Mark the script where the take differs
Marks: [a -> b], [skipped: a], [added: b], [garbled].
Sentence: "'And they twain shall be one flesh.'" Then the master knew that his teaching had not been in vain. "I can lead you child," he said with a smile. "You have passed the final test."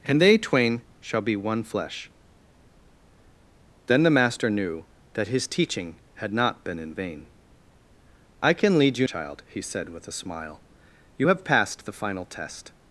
"'And they twain shall be one flesh.'" Then the master knew that his teaching had not been in vain. "I can lead you child," he said with a smile. "You have passed the final test."